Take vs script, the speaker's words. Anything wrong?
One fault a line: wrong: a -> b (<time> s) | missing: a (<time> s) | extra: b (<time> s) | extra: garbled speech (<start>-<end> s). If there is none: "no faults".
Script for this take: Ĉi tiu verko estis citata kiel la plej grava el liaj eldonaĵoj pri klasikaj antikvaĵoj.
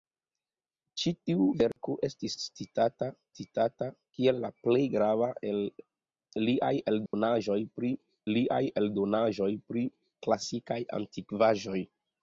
extra: citata (3.4 s)
extra: liaj eldonaĵoj pri (8.3 s)